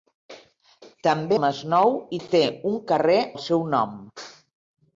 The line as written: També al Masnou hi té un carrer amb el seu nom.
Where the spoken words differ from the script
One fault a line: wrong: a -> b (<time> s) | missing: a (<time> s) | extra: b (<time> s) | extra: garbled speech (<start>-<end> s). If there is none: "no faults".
missing: al (1.4 s)
missing: amb (3.2 s)